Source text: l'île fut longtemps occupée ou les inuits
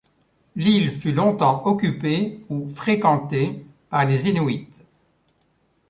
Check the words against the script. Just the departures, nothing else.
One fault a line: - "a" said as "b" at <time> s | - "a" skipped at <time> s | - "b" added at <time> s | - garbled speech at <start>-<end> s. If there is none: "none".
- "fréquentée par" added at 2.7 s